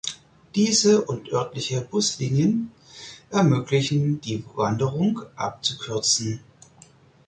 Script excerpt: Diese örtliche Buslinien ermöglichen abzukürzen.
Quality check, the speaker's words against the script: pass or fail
fail